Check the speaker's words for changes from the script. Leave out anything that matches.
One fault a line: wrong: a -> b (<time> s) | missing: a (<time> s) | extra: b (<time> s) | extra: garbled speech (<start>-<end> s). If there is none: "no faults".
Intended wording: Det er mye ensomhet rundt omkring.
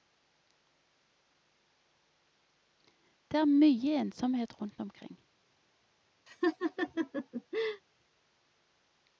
no faults